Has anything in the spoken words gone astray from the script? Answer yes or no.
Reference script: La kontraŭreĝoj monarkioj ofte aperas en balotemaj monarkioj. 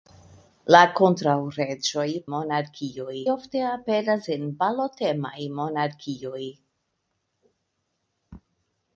no